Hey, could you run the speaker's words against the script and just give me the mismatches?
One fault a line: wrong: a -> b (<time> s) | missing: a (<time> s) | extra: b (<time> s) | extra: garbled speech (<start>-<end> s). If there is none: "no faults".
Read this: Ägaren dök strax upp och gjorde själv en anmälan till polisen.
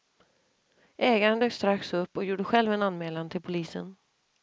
no faults